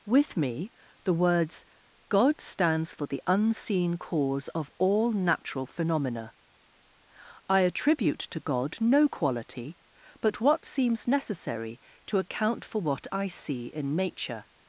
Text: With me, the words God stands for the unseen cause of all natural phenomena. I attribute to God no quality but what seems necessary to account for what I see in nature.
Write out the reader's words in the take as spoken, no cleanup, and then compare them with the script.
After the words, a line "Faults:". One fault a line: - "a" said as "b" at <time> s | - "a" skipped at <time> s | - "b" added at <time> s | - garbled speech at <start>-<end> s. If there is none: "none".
With me, the words God stands for the unseen cause of all natural phenomena. I attribute to God no quality but what seems necessary to account for what I see in nature.
Faults:
none